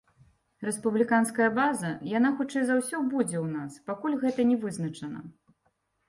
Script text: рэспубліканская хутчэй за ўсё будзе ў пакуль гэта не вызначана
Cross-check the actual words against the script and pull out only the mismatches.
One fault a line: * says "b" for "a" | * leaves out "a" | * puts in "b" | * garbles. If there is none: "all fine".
* puts in "база яна"
* puts in "нас"